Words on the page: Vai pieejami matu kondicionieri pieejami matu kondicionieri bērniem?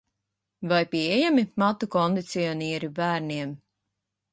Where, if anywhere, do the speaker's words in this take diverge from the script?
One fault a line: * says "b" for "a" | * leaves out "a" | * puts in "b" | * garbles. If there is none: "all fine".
* leaves out "pieejami matu kondicionieri"